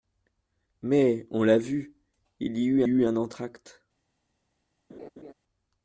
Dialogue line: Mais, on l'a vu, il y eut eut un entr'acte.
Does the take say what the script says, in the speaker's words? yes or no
yes